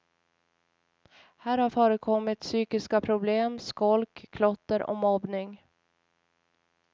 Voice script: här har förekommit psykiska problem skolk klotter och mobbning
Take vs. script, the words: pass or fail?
pass